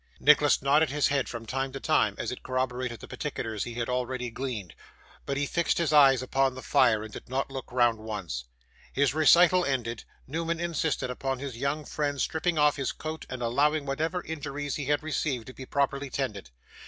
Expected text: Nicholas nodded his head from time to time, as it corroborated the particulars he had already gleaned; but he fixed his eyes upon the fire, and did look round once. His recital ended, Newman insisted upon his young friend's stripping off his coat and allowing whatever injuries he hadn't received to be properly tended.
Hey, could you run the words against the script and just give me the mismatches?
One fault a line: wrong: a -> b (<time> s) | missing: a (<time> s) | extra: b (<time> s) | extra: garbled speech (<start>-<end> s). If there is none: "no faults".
extra: not (7.3 s)
wrong: hadn't -> had (14.8 s)